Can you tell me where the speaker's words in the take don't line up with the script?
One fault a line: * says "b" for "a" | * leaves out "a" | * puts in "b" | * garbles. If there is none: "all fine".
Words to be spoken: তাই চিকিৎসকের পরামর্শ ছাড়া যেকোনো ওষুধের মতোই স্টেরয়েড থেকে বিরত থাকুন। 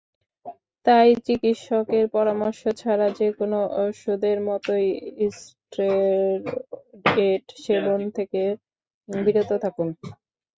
* puts in "সেবন"